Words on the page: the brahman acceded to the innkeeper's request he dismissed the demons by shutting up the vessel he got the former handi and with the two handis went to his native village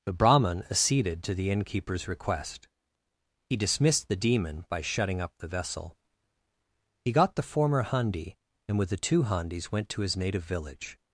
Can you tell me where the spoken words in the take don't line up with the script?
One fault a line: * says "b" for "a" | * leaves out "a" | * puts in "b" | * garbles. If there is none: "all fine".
* says "demon" for "demons"